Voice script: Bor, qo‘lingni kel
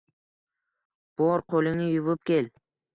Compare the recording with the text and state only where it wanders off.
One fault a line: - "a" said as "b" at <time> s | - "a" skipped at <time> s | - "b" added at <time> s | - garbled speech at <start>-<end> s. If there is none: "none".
- "yuvib" added at 1.9 s